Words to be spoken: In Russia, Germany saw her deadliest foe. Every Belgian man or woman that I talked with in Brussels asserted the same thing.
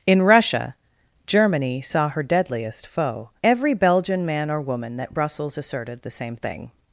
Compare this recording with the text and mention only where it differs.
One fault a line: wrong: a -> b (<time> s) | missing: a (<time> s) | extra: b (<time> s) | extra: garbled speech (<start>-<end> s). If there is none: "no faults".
missing: I talked with in (5.1 s)